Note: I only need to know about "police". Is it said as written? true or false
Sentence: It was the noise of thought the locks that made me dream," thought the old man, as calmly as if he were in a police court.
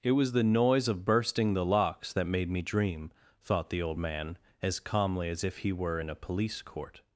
true